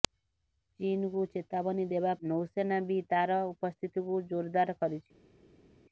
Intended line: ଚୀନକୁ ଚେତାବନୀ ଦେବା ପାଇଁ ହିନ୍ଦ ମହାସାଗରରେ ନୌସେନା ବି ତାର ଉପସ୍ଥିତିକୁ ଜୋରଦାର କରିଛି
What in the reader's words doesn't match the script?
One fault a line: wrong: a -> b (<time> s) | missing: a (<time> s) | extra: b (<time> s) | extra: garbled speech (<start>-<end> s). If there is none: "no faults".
missing: ପାଇଁ ହିନ୍ଦ ମହାସାଗରରେ (2.1 s)